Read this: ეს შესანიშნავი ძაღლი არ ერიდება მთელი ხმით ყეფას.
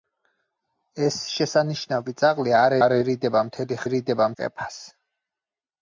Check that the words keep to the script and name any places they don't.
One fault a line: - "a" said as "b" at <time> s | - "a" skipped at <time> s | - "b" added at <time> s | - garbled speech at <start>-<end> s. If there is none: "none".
- "არ" added at 2.8 s
- "ხმით" said as "ერიდება" at 3.8 s